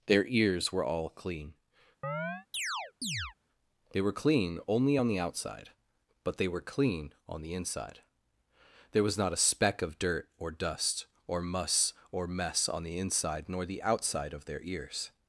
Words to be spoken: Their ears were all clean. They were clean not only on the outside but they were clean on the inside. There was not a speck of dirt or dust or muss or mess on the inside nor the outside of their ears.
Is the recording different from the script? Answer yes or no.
yes